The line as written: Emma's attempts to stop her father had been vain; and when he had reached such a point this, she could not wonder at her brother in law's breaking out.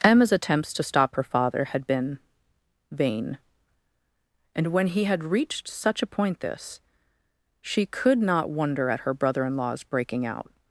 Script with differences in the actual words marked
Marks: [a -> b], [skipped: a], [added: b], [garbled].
Emma's attempts to stop her father had been vain; and when he had reached such a point this, she could not wonder at her brother in law's breaking out.